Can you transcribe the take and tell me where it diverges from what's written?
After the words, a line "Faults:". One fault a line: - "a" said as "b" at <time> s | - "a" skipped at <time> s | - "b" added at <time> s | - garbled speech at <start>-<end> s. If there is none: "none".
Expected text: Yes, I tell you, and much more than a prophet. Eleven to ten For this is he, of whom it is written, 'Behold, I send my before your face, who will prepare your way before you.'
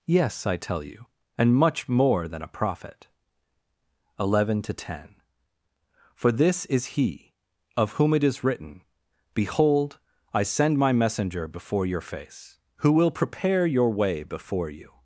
Yes, I tell you, and much more than a prophet. Eleven to ten For this is he, of whom it is written, 'Behold, I send my messenger before your face, who will prepare your way before you.'
Faults:
- "messenger" added at 10.9 s